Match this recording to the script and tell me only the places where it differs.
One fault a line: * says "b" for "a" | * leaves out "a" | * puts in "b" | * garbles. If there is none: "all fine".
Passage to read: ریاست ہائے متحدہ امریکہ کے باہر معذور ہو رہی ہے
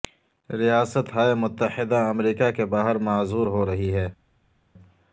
all fine